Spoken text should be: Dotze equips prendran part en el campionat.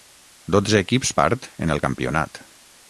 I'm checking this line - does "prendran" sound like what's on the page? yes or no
no